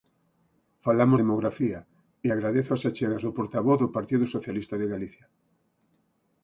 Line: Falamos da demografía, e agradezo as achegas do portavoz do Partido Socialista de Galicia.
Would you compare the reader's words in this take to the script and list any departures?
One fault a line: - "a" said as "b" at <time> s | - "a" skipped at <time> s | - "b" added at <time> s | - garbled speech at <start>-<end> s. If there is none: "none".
- "da" skipped at 1.2 s